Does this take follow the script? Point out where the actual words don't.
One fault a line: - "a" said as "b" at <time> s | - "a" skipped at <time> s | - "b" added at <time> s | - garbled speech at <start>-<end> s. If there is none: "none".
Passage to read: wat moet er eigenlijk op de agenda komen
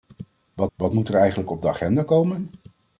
- "wat" added at 0.7 s